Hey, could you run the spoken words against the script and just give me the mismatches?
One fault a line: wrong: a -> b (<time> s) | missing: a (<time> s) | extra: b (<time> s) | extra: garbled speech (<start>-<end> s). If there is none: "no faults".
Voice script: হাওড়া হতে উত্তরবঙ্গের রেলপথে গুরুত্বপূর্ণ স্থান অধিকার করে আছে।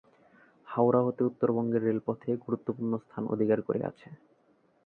no faults